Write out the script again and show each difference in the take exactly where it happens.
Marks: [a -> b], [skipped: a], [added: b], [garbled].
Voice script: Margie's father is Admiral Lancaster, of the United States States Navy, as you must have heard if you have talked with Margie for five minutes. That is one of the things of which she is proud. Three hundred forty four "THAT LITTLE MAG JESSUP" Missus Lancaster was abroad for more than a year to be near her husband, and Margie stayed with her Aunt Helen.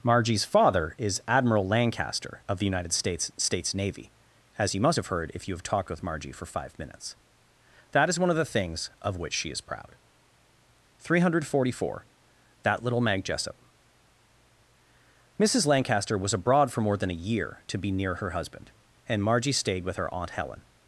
Margie's father is Admiral Lancaster, of the United States States Navy, as you must have heard if you have talked with Margie for five minutes. That is one of the things of which she is proud. Three hundred forty four "THAT LITTLE MAG JESSUP" Missus Lancaster was abroad for more than a year to be near her husband, and Margie stayed with her Aunt Helen.